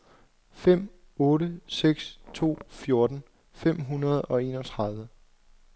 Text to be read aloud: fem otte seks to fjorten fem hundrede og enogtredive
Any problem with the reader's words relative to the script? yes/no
no